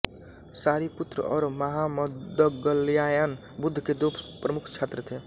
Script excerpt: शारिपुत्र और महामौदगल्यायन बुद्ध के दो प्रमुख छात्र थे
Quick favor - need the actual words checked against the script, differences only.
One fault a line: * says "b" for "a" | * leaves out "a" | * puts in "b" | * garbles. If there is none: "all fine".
all fine